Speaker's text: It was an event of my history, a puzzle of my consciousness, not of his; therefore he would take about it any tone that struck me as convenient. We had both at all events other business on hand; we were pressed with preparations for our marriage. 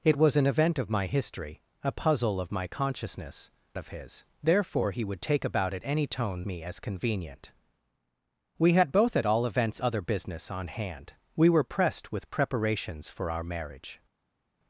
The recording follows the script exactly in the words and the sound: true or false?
false